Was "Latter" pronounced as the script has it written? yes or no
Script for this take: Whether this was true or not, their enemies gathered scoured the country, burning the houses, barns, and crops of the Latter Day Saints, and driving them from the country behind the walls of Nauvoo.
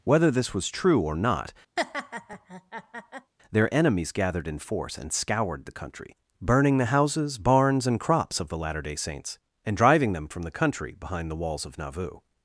yes